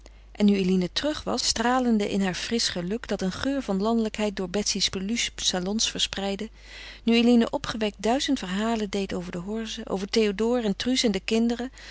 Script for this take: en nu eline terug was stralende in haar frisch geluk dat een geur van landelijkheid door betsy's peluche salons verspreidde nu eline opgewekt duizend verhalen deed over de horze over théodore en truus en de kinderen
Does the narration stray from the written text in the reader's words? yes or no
no